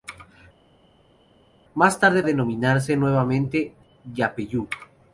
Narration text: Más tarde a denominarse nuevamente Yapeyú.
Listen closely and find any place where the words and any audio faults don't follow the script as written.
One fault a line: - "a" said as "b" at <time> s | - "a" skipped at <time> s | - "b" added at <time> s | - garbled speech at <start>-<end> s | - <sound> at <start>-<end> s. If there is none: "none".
none